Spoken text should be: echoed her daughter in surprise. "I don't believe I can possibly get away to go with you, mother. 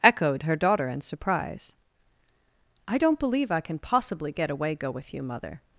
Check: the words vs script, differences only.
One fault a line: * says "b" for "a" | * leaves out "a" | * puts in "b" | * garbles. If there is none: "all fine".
* leaves out "to"